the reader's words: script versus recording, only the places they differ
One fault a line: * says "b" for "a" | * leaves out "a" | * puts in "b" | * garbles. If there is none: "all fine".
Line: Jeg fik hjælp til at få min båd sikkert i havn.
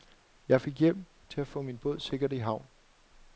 all fine